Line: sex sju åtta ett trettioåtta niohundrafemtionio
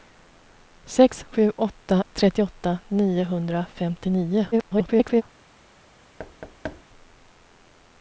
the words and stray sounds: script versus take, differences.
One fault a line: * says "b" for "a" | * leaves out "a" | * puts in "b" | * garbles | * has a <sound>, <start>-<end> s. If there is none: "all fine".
* leaves out "ett"
* garbles
* has a thud, 6.2-6.8 s